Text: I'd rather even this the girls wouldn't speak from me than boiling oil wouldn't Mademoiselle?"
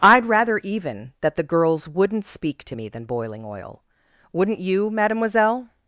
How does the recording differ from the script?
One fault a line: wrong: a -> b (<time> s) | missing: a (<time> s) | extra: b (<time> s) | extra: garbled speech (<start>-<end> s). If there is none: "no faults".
wrong: this -> that (1.2 s)
wrong: from -> to (2.6 s)
extra: you (4.6 s)